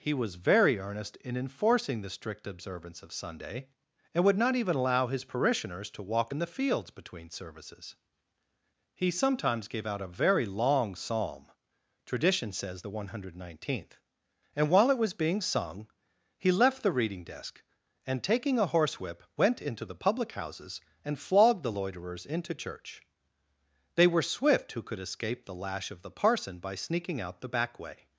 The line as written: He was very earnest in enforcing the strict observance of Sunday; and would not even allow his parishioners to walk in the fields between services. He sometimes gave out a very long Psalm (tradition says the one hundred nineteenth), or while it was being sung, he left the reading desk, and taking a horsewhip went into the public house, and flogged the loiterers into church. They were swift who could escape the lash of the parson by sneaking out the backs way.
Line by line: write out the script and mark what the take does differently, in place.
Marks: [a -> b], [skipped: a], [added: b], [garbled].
He was very earnest in enforcing the strict observance of Sunday; and would not even allow his parishioners to walk in the fields between services. He sometimes gave out a very long Psalm (tradition says the one hundred nineteenth), [or -> and] while it was being sung, he left the reading desk, and taking a horsewhip went into the public [house, -> houses] and flogged the loiterers into church. They were swift who could escape the lash of the parson by sneaking out the [backs -> back] way.